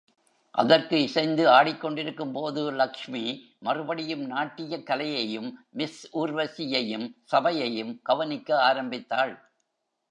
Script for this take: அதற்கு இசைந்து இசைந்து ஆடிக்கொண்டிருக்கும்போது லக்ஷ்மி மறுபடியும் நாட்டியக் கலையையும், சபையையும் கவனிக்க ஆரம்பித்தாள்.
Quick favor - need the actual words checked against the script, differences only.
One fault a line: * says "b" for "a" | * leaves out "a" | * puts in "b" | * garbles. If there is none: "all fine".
* leaves out "இசைந்து"
* puts in "மிஸ் ஊர்வசியையும்"